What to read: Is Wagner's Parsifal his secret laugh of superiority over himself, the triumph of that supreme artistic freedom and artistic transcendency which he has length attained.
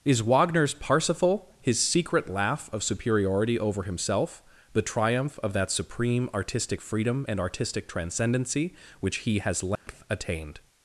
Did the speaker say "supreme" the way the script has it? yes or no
yes